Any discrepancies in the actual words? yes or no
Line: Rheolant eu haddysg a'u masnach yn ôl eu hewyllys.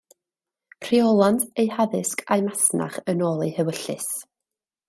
no